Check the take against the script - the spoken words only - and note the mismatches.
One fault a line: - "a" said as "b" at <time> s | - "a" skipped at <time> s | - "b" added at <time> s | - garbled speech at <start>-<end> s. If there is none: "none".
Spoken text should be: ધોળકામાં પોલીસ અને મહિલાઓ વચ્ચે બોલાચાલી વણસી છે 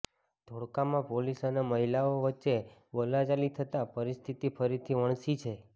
- "થતાં પરિસ્થિતિ ફરીથી" added at 3.5 s